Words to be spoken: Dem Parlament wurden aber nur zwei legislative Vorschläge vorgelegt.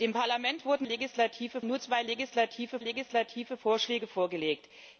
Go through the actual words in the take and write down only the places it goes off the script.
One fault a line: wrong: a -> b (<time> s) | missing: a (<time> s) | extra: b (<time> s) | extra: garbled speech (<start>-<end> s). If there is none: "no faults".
wrong: aber -> legislative (0.8 s)
extra: legislative (2.8 s)